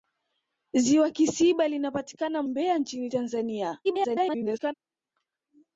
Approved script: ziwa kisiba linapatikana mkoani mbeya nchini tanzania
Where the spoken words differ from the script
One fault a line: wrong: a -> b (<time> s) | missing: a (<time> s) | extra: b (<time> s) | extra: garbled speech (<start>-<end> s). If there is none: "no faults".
missing: mkoani (2.4 s)
extra: garbled speech (3.8-4.7 s)